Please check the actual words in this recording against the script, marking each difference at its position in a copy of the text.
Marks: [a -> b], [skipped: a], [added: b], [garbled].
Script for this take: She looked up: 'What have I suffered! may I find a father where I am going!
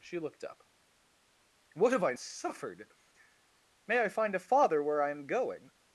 She looked up: 'What have I suffered! may I find a father where I am going!